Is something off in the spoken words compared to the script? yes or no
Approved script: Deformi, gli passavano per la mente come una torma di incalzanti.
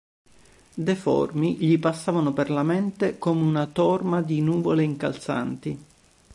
yes